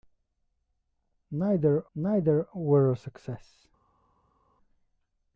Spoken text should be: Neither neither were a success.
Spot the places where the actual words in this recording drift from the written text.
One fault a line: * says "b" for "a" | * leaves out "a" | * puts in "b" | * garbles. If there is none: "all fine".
all fine